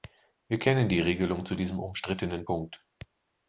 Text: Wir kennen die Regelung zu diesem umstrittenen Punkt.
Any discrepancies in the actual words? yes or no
no